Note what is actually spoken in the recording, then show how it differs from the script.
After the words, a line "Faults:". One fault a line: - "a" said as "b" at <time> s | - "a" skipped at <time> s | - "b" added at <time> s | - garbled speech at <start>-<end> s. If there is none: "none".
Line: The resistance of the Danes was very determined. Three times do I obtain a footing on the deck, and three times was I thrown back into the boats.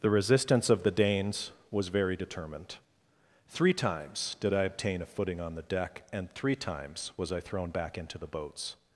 The resistance of the Danes was very determined. Three times did I obtain a footing on the deck, and three times was I thrown back into the boats.
Faults:
- "do" said as "did" at 4.4 s